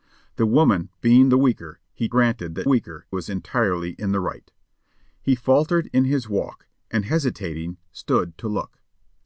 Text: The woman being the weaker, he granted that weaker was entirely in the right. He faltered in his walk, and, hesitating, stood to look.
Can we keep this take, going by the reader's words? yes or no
yes